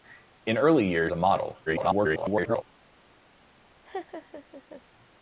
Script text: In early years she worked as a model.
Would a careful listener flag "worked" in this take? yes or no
yes